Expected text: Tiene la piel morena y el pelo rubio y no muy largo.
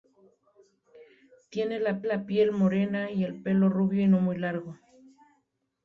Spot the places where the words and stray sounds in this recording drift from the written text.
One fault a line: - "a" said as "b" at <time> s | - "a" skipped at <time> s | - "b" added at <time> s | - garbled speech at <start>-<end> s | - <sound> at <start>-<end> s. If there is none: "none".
- "la" added at 2.0 s